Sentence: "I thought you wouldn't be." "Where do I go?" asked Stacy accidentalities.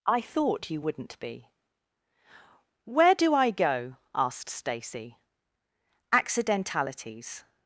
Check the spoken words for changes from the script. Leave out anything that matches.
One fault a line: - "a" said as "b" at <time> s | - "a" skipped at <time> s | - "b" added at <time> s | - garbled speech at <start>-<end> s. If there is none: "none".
none